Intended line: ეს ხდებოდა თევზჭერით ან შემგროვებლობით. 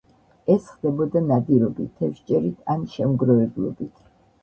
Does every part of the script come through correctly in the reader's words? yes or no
no